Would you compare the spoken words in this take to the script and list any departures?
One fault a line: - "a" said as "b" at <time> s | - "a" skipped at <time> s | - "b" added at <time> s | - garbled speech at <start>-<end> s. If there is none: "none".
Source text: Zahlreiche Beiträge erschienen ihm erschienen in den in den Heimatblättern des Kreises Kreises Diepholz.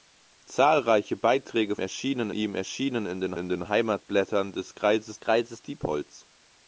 none